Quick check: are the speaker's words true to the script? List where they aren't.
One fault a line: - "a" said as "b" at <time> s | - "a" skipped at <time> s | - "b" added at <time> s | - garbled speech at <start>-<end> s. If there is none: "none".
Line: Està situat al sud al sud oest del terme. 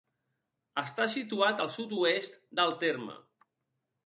- "al sud" skipped at 2.0 s